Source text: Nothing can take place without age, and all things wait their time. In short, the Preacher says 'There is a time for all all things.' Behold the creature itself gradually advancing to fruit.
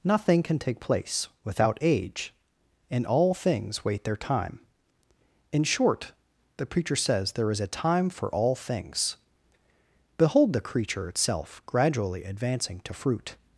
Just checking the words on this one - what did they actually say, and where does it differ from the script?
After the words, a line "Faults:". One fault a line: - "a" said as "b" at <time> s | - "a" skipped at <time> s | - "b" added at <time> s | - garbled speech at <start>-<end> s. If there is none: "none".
Nothing can take place without age, and all things wait their time. In short, the Preacher says 'There is a time for all things.' Behold the creature itself gradually advancing to fruit.
Faults:
- "all" skipped at 8.5 s